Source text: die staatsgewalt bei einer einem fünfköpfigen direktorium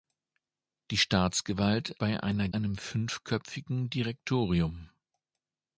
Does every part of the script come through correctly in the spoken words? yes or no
yes